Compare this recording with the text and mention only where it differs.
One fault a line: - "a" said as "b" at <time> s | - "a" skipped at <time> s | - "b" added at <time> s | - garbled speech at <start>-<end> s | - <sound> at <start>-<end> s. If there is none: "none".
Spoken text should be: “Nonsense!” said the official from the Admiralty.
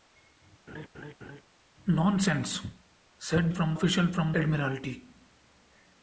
- laugh at 0.7-1.4 s
- "the" said as "from" at 3.5 s
- "the" skipped at 4.3 s